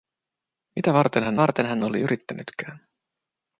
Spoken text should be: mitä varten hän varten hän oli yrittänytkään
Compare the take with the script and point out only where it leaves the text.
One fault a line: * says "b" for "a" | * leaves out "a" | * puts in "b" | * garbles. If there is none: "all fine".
all fine